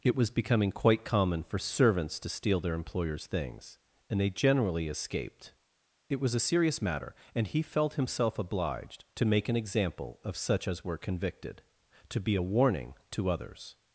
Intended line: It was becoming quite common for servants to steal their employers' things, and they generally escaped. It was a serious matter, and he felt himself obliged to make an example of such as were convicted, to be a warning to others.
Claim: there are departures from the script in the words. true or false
false